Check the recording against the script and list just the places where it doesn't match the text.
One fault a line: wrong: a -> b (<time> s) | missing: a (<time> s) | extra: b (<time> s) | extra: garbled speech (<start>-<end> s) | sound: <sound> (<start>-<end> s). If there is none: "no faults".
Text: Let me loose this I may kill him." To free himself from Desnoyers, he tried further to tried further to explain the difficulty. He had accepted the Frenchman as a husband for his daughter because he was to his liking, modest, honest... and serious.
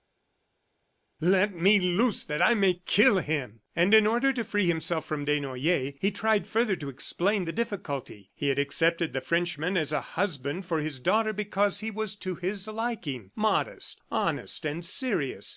wrong: this -> that (2.2 s)
extra: And in order (3.8 s)
missing: tried further to (6.9 s)